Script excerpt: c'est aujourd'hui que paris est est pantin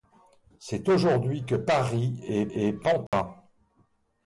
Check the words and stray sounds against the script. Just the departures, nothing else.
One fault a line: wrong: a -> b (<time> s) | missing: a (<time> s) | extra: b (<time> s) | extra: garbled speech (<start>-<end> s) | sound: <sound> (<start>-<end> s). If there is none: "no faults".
sound: dropout (3.1-3.1 s)